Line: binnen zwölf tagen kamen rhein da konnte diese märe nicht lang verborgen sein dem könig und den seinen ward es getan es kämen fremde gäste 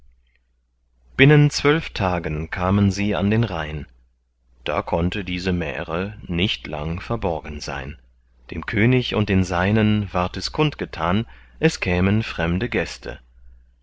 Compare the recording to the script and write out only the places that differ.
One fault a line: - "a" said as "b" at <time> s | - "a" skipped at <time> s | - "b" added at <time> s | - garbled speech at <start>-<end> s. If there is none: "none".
- "sie an den" added at 2.9 s
- "kund" added at 10.5 s